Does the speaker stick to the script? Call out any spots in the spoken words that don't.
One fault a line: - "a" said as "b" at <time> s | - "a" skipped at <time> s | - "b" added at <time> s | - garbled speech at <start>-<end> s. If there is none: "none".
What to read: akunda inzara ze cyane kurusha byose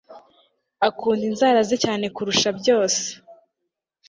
none